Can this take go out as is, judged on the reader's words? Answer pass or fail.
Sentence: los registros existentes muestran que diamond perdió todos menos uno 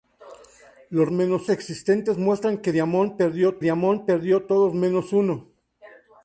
fail